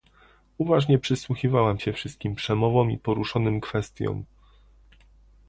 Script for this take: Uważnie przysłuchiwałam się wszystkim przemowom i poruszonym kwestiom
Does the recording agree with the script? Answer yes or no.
yes